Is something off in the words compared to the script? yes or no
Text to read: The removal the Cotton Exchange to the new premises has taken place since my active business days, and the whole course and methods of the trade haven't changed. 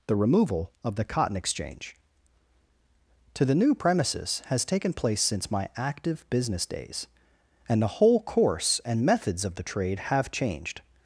yes